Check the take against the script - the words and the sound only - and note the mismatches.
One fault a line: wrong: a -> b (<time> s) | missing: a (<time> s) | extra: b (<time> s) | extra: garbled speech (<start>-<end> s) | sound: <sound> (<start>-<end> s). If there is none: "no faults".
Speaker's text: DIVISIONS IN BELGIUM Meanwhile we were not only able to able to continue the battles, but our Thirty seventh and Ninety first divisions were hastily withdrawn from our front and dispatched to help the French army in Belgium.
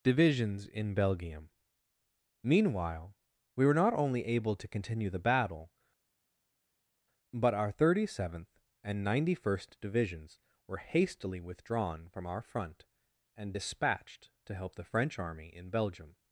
missing: able to (4.7 s)
wrong: battles -> battle (5.3 s)